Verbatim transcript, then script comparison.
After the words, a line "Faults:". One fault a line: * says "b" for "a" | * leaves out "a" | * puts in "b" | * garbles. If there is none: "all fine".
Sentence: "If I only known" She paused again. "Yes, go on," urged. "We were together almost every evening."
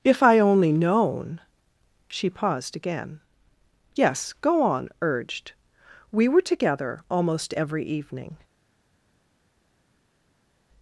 "If I only known" She paused again. "Yes, go on," urged. "We were together almost every evening."
Faults:
all fine